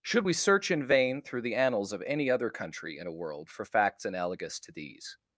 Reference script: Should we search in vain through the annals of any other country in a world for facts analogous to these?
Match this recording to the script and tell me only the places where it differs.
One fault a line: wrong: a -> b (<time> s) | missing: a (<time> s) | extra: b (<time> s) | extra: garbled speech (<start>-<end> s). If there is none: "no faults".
no faults